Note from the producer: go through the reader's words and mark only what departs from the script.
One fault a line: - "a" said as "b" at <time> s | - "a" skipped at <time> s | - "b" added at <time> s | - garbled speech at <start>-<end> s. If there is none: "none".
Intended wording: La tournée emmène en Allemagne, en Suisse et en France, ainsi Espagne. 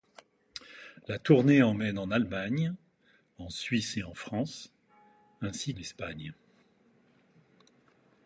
none